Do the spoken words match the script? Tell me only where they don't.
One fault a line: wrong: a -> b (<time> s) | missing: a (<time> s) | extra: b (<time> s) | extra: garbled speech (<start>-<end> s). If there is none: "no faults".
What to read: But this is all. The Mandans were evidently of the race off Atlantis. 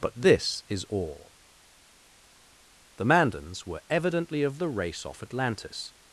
no faults